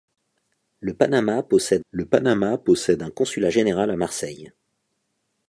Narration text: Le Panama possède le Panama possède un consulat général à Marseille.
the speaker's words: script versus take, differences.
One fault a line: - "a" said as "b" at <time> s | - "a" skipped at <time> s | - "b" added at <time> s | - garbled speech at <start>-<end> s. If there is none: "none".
none